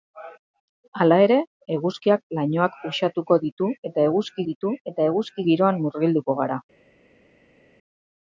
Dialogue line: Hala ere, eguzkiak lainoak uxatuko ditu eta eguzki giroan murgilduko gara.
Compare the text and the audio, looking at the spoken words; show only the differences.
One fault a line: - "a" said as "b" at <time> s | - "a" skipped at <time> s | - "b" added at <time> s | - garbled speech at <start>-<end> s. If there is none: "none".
- "ditu eta eguzki" added at 4.5 s